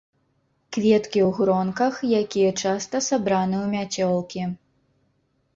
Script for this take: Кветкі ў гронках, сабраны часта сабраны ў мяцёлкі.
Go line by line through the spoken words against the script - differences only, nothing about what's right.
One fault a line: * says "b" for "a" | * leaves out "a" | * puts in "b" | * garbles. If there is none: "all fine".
* says "якія" for "сабраны"